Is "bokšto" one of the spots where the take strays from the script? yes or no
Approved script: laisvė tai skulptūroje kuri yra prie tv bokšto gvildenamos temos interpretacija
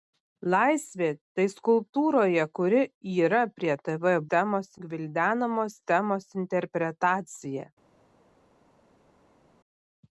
yes